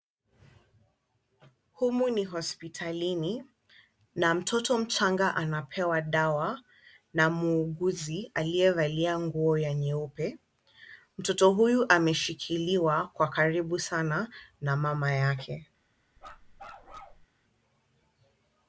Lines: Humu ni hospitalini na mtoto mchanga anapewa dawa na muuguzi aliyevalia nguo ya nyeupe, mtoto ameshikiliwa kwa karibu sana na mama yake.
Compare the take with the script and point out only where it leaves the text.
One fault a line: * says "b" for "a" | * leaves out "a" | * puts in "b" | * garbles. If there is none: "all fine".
* puts in "huyu"